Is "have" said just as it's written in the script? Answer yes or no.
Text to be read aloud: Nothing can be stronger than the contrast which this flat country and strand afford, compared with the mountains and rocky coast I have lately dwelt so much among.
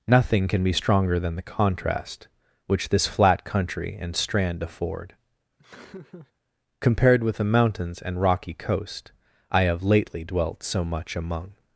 yes